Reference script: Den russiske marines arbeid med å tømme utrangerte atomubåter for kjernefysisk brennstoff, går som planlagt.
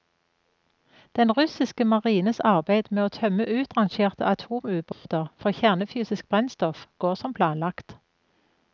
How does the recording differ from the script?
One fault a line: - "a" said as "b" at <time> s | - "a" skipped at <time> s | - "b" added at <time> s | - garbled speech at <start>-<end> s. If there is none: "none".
none